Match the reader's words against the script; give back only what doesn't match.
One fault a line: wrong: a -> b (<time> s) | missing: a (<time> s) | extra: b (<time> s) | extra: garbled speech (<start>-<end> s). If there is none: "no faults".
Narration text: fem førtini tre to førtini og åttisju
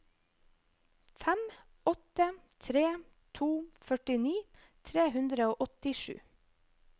wrong: førtini -> åtte (1.9 s)
extra: tre hundre (4.9 s)